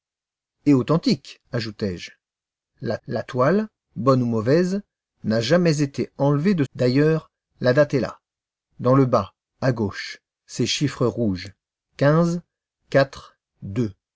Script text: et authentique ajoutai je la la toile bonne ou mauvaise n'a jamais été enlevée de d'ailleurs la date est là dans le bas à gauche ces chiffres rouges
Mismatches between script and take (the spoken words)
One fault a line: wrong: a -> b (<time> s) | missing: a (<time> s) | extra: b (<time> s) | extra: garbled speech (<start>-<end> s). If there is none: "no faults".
no faults